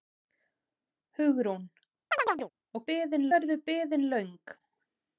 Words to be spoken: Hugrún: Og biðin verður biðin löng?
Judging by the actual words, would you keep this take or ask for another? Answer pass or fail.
pass